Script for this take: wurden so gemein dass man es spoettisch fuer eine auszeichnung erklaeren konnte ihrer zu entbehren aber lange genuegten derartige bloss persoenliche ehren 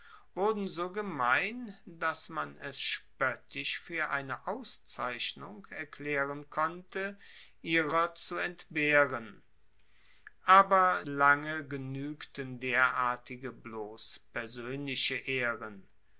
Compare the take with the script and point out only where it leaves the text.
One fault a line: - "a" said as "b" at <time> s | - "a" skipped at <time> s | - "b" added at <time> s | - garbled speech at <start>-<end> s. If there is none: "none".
none